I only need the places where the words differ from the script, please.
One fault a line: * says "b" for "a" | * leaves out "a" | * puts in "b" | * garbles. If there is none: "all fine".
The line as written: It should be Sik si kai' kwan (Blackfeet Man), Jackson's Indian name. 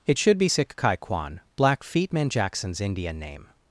* leaves out "si"